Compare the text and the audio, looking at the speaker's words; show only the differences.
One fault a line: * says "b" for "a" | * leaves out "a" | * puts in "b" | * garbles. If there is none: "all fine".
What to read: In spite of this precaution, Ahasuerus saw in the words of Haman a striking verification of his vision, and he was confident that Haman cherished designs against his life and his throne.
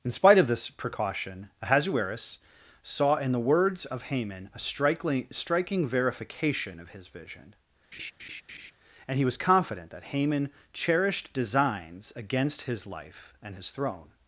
* puts in "striking"